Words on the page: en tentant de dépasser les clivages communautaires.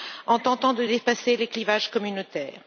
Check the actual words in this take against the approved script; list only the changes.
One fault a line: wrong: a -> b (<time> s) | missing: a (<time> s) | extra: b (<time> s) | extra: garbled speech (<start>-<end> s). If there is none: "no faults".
no faults